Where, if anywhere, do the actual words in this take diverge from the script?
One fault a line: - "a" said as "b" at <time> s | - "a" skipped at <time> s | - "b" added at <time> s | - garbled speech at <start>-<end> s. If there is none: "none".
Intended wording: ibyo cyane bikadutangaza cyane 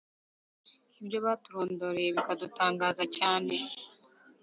- "cyane" said as "baturondoreye" at 1.2 s